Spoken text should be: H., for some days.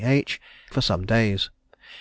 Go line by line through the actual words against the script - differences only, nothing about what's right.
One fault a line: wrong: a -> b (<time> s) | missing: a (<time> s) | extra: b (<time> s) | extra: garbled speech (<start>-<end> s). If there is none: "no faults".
no faults